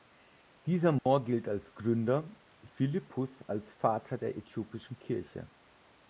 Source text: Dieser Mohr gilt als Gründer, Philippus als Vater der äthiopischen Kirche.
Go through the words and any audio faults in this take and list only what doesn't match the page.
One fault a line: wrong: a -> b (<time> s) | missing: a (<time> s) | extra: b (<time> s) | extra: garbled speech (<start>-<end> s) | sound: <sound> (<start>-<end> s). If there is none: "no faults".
sound: dropout (1.0-1.1 s)